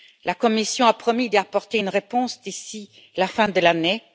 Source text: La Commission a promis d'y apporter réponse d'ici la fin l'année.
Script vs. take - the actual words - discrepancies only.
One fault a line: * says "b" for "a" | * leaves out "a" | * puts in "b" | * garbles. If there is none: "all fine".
* puts in "une"
* puts in "de"